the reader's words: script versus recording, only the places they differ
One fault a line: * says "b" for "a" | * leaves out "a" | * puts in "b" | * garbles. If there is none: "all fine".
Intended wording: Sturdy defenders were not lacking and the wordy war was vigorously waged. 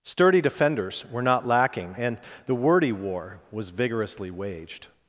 all fine